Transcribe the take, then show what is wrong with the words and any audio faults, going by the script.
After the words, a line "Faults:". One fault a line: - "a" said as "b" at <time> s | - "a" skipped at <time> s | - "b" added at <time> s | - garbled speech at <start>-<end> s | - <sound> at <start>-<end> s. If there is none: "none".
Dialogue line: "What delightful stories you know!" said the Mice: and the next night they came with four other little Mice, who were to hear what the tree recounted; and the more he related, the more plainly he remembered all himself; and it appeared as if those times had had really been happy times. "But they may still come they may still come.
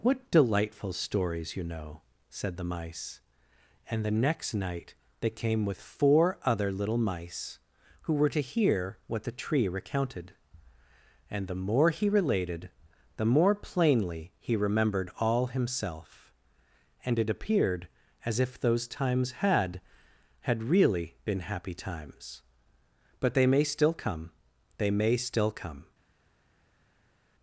"What delightful stories you know!" said the Mice: and the next night they came with four other little Mice, who were to hear what the tree recounted; and the more he related, the more plainly he remembered all himself; and it appeared as if those times had had really been happy times. "But they may still come they may still come.
Faults:
none